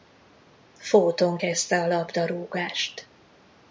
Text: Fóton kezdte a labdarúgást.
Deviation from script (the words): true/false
false